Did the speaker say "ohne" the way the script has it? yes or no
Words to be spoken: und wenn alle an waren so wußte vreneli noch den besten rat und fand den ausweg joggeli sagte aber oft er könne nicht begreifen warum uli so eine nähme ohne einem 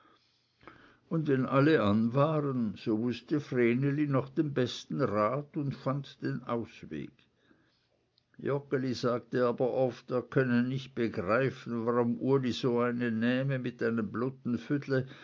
no